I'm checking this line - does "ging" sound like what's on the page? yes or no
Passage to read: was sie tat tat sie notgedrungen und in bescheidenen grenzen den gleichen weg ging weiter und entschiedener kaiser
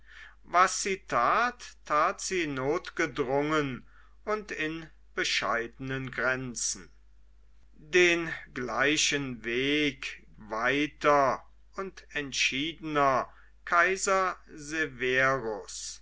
no